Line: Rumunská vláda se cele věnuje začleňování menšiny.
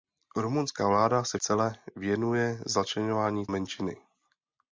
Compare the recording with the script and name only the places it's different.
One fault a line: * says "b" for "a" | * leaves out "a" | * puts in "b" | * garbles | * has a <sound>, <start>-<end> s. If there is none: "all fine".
all fine